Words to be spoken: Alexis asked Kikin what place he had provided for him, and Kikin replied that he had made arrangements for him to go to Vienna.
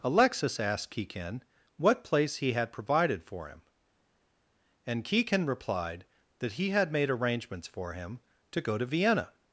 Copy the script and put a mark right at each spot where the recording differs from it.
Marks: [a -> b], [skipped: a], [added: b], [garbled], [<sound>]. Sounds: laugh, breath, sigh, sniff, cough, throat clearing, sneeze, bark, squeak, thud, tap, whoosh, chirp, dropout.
Alexis asked Kikin what place he had provided for him, and Kikin replied that he had made arrangements for him to go to Vienna.